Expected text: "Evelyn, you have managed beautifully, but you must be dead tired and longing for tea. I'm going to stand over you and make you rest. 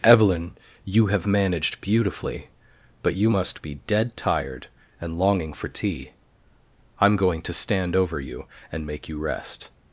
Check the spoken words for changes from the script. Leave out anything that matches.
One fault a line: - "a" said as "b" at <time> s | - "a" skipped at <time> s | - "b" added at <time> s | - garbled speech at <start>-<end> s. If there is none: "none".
none